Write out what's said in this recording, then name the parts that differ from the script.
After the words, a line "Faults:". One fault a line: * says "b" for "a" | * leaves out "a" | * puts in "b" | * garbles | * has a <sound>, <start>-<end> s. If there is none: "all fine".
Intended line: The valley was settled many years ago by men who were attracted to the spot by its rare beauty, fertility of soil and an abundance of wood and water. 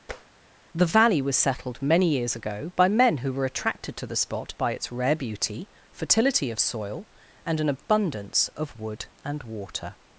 The valley was settled many years ago by men who were attracted to the spot by its rare beauty, fertility of soil and an abundance of wood and water.
Faults:
* has a tap, 0.1-0.3 s